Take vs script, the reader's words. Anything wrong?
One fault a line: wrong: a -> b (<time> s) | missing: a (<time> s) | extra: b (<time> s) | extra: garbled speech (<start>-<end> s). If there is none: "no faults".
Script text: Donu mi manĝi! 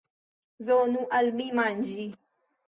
extra: al (1.2 s)